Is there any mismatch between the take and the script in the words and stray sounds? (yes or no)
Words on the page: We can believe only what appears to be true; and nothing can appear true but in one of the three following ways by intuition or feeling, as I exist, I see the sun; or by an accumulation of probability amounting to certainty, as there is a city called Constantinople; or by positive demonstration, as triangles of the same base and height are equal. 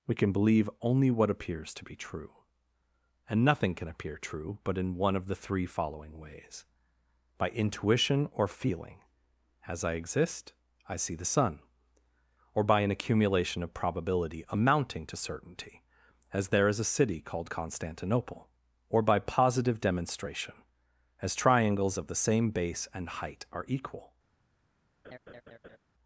yes